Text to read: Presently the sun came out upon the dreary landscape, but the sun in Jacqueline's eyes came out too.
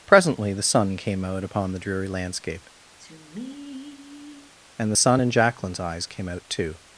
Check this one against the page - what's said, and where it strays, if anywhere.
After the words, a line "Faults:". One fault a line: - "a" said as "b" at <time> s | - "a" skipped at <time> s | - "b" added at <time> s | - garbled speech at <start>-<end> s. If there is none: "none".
Presently the sun came out upon the dreary landscape, and the sun in Jacqueline's eyes came out too.
Faults:
- "but" said as "and" at 4.8 s